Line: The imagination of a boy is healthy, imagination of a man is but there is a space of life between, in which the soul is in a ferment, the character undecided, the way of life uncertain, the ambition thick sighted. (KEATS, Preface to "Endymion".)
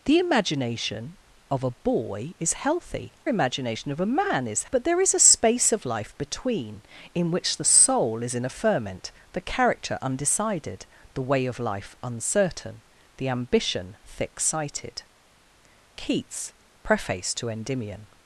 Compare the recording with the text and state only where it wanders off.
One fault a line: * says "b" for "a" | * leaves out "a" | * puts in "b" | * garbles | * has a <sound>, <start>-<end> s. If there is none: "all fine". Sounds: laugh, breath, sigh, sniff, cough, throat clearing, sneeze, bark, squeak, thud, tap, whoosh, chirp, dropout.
all fine